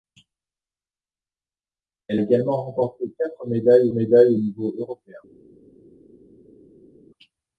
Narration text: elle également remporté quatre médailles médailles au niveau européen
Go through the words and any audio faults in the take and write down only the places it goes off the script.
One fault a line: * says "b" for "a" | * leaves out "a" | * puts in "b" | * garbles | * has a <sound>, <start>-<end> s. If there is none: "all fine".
all fine